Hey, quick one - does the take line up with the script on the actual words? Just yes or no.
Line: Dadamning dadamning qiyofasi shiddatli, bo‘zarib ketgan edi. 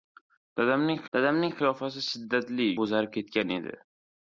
yes